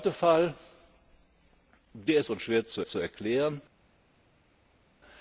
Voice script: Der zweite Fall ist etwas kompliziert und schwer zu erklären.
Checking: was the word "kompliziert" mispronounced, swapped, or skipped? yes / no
yes